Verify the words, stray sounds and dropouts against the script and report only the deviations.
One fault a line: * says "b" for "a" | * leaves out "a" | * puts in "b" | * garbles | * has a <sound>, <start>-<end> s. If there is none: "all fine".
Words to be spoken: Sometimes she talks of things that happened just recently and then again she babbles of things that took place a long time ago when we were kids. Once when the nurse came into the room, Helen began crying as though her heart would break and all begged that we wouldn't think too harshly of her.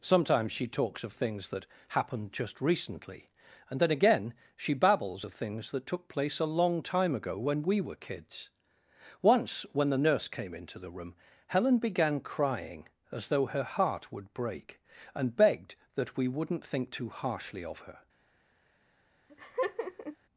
* leaves out "all"
* has a laugh, 19.3-20.2 s